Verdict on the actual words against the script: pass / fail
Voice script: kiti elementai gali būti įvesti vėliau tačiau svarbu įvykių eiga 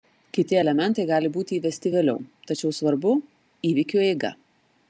pass